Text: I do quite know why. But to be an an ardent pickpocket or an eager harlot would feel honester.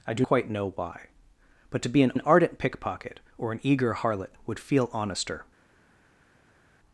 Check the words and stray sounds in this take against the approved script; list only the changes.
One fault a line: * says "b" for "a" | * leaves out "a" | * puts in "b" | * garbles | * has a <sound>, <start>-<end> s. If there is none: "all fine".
all fine